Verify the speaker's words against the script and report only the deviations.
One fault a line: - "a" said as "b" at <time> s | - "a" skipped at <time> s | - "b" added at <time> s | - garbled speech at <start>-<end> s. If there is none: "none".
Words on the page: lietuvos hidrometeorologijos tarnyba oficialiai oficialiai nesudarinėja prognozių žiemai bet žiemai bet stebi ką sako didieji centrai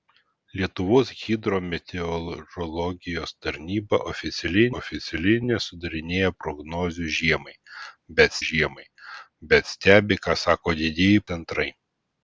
none